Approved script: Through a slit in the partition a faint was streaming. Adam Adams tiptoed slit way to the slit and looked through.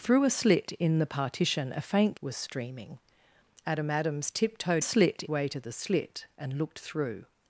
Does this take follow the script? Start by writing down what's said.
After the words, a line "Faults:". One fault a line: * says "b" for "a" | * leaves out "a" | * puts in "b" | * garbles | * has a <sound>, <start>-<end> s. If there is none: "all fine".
Through a slit in the partition a faint was streaming. Adam Adams tiptoed slit way to the slit and looked through.
Faults:
all fine